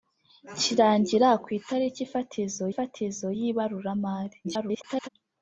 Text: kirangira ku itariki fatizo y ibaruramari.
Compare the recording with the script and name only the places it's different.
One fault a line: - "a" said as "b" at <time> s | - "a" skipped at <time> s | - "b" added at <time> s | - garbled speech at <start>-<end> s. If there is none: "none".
- "fatizo" added at 2.7 s
- garbled speech at 4.4-5.1 s